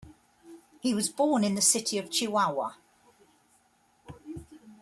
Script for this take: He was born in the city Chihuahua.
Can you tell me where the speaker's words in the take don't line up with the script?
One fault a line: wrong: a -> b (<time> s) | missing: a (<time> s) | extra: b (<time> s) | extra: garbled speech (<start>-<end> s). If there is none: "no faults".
extra: of (2.0 s)